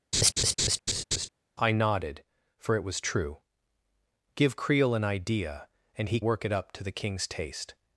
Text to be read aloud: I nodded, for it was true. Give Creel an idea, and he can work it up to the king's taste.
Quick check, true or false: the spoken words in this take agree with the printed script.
false